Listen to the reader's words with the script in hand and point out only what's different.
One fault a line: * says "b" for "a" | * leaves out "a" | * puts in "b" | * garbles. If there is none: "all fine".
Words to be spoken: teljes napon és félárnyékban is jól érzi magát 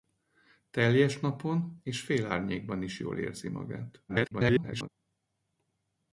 * garbles